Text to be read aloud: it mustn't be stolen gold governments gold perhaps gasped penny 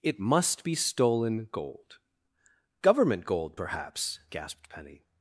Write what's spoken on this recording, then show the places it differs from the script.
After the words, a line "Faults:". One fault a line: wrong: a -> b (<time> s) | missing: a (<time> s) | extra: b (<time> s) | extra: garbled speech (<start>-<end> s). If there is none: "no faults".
it must be stolen gold government gold perhaps gasped penny
Faults:
wrong: mustn't -> must (0.2 s)
wrong: governments -> government (2.8 s)